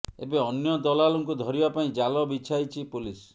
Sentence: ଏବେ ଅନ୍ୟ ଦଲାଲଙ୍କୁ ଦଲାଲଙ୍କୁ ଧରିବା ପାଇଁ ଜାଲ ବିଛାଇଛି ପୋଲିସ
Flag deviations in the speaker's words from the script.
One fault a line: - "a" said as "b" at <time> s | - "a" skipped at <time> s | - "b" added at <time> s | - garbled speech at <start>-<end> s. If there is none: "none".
- "ଦଲାଲଙ୍କୁ" skipped at 1.4 s